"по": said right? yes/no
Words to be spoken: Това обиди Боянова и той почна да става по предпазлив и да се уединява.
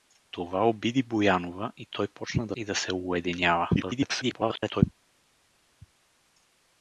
no